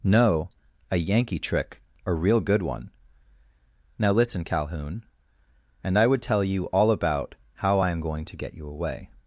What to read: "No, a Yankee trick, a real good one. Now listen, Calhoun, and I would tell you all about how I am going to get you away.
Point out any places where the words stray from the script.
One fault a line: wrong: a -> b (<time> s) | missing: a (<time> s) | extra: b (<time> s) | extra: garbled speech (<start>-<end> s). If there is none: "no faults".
no faults